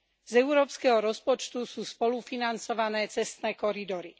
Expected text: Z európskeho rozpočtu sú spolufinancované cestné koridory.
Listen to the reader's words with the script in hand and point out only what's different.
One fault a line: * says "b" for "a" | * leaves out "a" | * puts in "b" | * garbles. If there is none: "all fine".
all fine